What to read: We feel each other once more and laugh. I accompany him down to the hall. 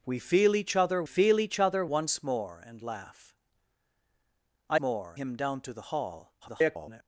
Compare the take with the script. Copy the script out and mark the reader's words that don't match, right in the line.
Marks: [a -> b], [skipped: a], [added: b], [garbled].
We feel each other [added: feel each other] once more and laugh. I [accompany -> more] him down to the hall. [garbled]